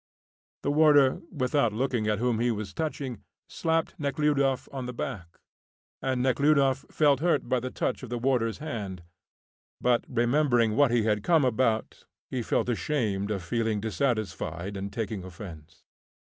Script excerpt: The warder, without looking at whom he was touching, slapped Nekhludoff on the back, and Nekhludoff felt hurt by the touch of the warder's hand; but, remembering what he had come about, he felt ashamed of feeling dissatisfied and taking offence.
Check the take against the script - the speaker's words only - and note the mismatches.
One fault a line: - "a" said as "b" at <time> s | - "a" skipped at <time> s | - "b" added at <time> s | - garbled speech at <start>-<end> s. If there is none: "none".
none